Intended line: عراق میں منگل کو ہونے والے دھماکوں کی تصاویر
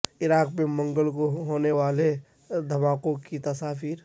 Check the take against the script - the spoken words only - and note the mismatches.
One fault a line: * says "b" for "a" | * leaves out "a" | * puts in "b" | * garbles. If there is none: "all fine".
all fine